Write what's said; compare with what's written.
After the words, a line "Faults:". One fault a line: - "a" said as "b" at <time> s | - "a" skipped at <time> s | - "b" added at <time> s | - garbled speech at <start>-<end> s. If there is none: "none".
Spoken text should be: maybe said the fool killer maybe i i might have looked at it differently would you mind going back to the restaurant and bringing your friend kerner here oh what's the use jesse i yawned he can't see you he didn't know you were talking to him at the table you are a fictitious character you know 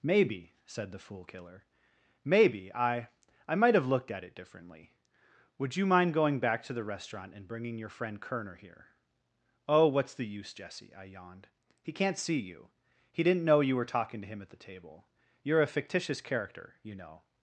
maybe said the fool killer maybe i i might have looked at it differently would you mind going back to the restaurant and bringing your friend kerner here oh what's the use jesse i yawned he can't see you he didn't know you were talking to him at the table you are a fictitious character you know
Faults:
none